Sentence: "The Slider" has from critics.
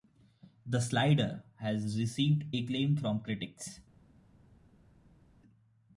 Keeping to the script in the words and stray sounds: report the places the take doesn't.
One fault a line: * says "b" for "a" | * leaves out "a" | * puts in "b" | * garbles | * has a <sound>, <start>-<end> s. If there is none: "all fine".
* puts in "received acclaim"